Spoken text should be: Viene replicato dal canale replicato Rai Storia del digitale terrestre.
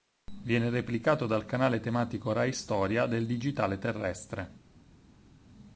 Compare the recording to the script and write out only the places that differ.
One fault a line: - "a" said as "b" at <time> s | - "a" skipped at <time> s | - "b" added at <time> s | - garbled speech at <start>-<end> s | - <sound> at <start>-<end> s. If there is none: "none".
- "replicato" said as "tematico" at 1.8 s